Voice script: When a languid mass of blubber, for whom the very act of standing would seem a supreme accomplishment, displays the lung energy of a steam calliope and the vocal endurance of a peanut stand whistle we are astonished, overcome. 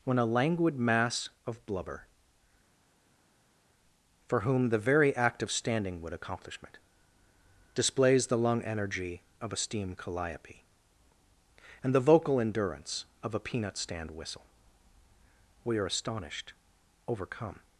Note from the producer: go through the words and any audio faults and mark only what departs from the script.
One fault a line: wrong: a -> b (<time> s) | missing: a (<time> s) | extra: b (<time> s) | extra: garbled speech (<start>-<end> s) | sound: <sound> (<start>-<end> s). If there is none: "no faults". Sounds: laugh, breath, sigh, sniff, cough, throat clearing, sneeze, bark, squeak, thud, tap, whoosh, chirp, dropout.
missing: seem a supreme (6.1 s)